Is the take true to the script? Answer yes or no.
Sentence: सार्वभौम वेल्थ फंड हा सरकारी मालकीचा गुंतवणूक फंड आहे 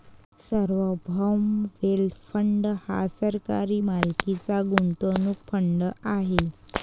yes